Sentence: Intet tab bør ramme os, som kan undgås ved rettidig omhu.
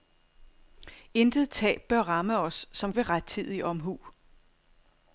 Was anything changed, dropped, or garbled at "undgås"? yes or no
yes